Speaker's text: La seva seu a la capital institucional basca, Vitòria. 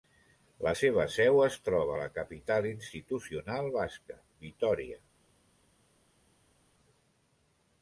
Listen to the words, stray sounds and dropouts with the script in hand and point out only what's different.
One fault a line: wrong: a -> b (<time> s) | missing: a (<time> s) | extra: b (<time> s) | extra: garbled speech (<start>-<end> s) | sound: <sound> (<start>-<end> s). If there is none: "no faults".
extra: es troba (1.5 s)